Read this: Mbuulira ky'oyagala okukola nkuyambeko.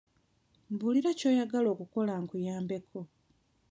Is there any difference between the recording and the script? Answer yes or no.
no